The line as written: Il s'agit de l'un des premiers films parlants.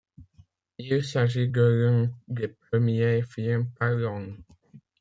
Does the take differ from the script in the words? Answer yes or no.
no